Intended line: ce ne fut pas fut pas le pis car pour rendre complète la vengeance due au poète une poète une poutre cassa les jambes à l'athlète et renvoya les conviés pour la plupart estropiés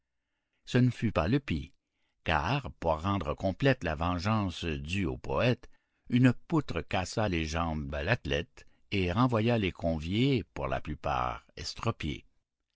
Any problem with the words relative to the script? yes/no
yes